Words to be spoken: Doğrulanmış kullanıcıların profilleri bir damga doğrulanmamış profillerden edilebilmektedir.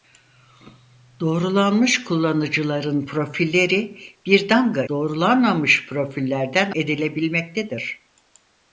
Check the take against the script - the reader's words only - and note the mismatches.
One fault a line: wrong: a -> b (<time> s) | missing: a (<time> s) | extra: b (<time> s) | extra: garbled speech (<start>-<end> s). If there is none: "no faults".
no faults